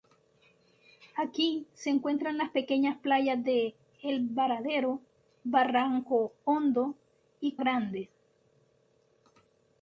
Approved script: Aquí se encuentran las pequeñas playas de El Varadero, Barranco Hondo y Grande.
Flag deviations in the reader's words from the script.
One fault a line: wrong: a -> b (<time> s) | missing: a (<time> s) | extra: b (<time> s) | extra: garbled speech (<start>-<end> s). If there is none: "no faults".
no faults